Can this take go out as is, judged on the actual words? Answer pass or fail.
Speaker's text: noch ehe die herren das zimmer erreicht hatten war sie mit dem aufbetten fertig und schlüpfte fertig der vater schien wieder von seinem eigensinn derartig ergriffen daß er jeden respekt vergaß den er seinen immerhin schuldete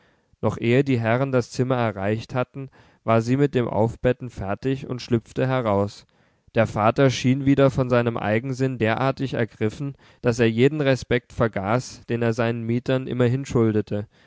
fail